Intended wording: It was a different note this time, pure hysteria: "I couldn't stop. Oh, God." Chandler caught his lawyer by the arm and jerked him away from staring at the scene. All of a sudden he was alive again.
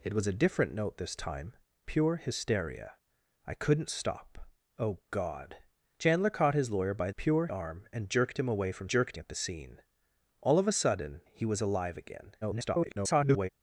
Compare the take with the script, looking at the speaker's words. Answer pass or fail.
fail